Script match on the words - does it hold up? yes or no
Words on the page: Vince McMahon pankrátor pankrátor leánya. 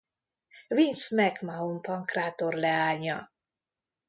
no